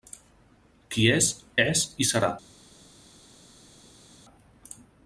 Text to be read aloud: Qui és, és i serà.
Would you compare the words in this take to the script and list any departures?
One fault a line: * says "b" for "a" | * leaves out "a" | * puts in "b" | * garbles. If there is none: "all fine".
all fine